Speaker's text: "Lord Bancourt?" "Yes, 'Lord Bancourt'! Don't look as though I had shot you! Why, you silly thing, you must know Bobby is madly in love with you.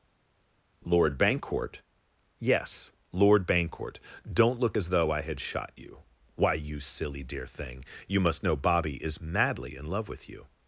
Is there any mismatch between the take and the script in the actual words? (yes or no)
yes